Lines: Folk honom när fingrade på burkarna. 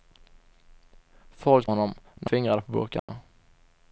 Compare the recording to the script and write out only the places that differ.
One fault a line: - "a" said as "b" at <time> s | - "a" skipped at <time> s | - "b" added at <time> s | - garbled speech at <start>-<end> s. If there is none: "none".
none